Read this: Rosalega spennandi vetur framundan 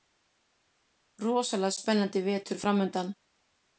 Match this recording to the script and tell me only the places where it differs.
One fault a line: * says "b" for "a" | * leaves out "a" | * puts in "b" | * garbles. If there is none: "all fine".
all fine